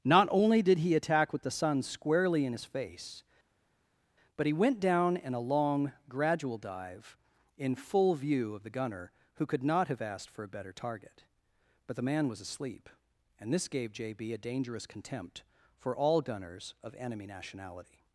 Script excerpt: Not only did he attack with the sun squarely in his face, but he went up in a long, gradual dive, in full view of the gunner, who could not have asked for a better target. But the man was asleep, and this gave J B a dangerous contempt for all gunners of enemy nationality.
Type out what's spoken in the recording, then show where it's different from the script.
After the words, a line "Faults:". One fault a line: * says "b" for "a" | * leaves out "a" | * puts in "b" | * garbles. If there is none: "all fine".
Not only did he attack with the sun squarely in his face, but he went down in a long, gradual dive, in full view of the gunner, who could not have asked for a better target. But the man was asleep, and this gave J B a dangerous contempt for all gunners of enemy nationality.
Faults:
* says "down" for "up"